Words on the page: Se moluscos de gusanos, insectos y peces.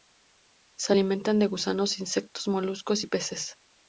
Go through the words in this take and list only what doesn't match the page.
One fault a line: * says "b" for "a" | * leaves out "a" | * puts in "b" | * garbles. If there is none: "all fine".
* says "alimentan" for "moluscos"
* puts in "moluscos"